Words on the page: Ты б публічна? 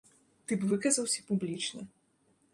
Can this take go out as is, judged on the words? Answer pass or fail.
fail